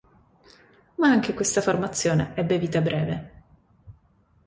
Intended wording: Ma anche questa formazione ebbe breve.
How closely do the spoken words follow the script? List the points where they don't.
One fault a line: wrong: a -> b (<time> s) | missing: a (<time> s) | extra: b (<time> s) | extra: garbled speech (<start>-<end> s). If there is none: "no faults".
extra: vita (2.6 s)